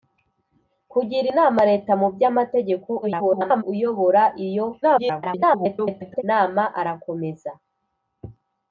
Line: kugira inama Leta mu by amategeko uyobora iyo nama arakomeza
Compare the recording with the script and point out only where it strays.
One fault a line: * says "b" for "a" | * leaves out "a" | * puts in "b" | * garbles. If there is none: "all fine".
* garbles
* garbles